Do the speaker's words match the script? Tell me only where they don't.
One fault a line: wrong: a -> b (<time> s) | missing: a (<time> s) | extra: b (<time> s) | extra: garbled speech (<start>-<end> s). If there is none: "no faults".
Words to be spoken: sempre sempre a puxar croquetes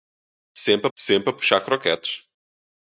no faults